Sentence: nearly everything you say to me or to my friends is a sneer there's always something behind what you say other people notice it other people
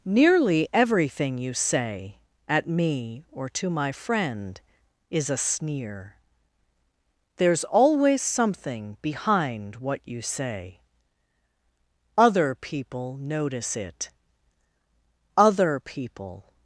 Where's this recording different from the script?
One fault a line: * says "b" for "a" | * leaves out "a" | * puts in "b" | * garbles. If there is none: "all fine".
* says "at" for "to"
* says "friend" for "friends"